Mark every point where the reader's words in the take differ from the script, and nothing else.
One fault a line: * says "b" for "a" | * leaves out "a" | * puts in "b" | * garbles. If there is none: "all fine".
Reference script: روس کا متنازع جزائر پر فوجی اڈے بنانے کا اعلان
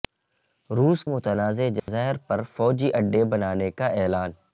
* leaves out "کا"